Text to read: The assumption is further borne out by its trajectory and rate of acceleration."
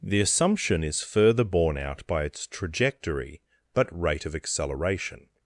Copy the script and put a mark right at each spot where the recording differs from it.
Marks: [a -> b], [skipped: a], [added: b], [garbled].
The assumption is further borne out by its trajectory [and -> but] rate of acceleration."